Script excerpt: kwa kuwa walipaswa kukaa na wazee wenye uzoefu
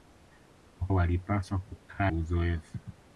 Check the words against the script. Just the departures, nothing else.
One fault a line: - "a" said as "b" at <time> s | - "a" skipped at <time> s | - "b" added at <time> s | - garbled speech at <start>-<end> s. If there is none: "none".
- "kuwa" skipped at 0.9 s
- "na wazee wenye" skipped at 2.1 s